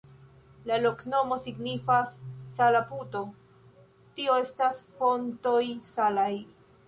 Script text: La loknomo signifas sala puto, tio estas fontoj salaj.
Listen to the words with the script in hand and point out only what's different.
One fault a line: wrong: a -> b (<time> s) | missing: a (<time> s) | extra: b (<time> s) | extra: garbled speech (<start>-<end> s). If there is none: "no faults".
no faults